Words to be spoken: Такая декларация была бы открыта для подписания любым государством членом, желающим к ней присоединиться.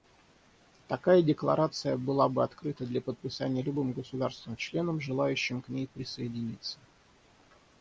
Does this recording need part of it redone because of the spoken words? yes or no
no